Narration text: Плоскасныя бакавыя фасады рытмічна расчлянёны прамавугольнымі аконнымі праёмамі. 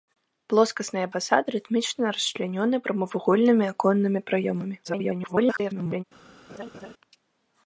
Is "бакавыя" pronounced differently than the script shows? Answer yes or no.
yes